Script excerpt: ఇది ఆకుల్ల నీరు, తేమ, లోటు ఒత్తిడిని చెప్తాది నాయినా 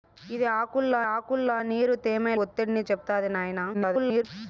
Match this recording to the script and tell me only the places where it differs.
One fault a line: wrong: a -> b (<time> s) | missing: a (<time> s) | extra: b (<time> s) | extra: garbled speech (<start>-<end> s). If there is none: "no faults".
extra: ఆకుల్ల (1.1 s)
missing: లోటు (2.3 s)
extra: garbled speech (3.7-4.2 s)